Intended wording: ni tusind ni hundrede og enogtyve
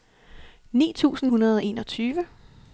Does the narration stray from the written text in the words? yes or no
yes